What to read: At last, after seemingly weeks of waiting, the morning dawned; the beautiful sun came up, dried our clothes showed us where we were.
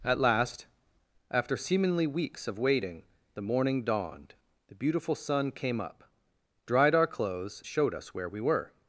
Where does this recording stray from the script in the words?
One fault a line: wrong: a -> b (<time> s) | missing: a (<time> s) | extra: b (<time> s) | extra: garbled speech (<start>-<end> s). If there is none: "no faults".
no faults